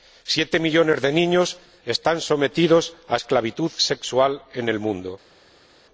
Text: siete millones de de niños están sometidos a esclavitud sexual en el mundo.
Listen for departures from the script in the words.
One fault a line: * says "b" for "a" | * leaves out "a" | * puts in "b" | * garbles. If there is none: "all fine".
* leaves out "de"